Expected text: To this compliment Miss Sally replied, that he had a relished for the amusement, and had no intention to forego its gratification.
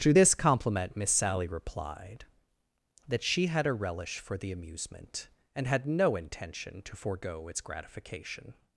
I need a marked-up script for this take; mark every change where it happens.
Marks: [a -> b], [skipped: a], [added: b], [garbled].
To this compliment Miss Sally replied, that [he -> she] had a [relished -> relish] for the amusement, and had no intention to forego its gratification.